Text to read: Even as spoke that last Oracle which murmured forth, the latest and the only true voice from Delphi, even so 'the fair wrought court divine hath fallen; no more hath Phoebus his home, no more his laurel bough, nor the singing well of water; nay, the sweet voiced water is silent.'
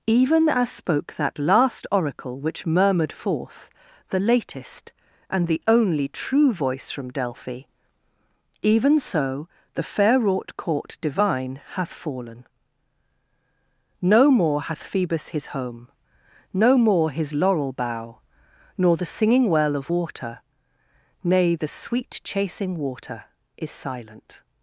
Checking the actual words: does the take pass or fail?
fail